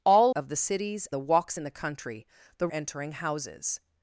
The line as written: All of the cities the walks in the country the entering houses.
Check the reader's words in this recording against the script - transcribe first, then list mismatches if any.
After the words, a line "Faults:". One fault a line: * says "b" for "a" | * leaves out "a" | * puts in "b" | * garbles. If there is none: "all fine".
All of the cities the walks in the country the entering houses.
Faults:
all fine